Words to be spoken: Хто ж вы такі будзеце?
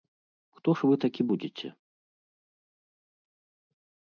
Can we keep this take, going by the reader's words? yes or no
yes